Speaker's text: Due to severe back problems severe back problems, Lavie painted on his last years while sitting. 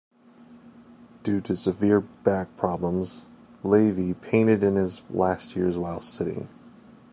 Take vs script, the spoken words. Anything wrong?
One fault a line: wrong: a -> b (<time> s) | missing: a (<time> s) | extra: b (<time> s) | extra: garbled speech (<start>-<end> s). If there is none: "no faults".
missing: severe back problems (3.3 s)
wrong: on -> in (4.6 s)